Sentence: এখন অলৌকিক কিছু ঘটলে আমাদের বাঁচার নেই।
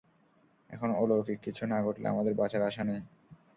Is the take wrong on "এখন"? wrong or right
right